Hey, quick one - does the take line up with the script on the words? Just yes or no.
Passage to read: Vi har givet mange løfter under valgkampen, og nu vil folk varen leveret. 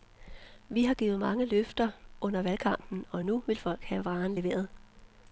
no